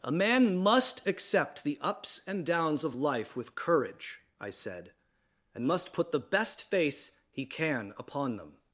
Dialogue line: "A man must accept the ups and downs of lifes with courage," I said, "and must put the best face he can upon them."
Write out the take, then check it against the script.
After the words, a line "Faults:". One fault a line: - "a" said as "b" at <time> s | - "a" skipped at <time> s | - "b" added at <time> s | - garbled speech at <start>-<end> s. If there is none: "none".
"A man must accept the ups and downs of life with courage," I said, "and must put the best face he can upon them."
Faults:
- "lifes" said as "life" at 3.0 s